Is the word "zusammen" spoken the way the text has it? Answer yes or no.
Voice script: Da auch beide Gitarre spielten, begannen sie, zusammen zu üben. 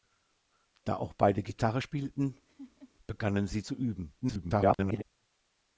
no